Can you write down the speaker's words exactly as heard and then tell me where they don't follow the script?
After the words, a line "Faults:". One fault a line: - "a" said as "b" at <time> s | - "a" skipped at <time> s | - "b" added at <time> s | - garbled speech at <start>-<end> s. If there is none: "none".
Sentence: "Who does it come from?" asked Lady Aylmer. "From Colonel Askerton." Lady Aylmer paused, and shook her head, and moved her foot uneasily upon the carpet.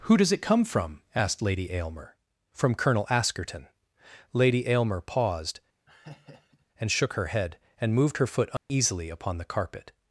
"Who does it come from?" asked Lady Aylmer. "From Colonel Askerton." Lady Aylmer paused, and shook her head, and moved her foot uneasily upon the carpet.
Faults:
none